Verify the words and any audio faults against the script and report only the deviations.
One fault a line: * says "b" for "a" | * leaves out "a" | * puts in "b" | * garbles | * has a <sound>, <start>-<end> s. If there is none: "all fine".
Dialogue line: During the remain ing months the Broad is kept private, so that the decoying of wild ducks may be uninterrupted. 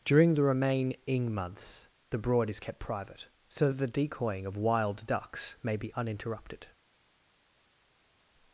all fine